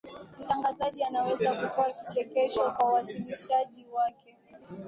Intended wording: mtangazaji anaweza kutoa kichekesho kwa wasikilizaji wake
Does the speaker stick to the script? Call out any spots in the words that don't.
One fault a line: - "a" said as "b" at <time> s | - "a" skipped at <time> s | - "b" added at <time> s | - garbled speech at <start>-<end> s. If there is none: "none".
none